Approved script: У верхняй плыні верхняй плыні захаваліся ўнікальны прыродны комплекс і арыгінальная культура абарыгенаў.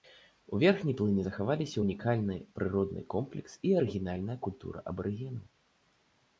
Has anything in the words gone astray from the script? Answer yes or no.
yes